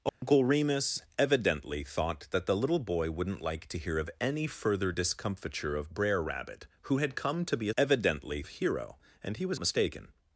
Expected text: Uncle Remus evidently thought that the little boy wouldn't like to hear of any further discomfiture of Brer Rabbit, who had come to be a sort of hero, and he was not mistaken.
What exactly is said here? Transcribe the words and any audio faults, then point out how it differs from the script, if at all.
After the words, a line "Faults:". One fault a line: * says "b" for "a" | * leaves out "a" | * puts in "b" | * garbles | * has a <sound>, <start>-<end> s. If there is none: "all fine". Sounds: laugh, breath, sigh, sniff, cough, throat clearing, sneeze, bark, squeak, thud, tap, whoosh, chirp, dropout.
Uncle Remus evidently thought that the little boy wouldn't like to hear of any further discomfiture of Brer Rabbit, who had come to be a evidently of hero, and he was mistaken.
Faults:
* has a dropout, 0.1-0.2 s
* says "evidently" for "sort"
* leaves out "not"